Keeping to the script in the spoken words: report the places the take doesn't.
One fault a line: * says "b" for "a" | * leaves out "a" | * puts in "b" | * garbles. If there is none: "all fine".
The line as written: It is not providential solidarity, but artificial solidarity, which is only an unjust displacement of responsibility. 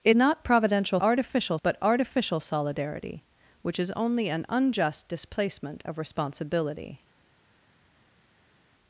* leaves out "is"
* says "artificial" for "solidarity"